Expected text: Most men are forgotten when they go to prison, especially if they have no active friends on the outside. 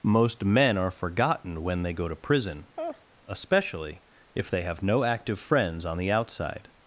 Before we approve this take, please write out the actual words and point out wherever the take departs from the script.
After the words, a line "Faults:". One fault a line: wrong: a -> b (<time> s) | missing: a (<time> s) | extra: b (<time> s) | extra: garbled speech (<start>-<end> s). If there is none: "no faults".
Most men are forgotten when they go to prison, especially if they have no active friends on the outside.
Faults:
no faults